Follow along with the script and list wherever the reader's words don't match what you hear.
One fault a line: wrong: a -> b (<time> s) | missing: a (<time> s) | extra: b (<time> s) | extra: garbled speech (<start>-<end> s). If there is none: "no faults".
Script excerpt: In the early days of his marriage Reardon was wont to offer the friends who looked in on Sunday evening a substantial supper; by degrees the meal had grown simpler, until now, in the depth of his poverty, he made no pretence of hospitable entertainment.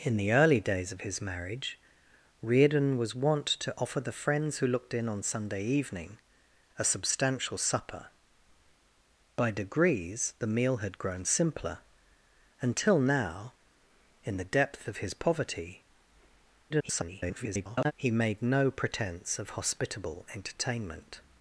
extra: garbled speech (16.7-17.9 s)